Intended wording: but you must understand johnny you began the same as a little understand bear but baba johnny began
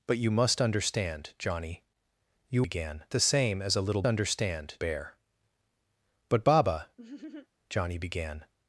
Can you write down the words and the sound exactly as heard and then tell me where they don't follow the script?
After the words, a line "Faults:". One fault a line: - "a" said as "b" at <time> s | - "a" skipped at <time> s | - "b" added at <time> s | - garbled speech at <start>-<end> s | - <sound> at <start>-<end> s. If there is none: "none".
but you must understand johnny you began the same as a little understand bear but baba johnny began
Faults:
- laugh at 7.0-7.5 s